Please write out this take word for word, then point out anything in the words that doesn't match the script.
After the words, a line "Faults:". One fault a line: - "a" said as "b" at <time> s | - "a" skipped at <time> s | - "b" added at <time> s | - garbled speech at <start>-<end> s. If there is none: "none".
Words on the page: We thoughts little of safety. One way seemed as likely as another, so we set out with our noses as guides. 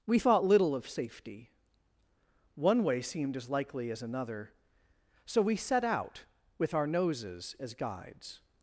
We thought little of safety. One way seemed as likely as another, so we set out with our noses as guides.
Faults:
- "thoughts" said as "thought" at 0.2 s